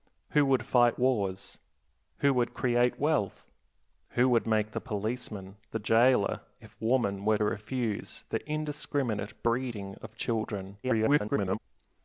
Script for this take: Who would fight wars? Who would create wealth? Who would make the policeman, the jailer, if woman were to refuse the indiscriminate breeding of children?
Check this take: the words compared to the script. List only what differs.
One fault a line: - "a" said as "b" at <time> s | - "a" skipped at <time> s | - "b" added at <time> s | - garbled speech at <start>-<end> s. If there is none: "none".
- "to" skipped at 7.4 s
- garbled speech at 10.8-11.6 s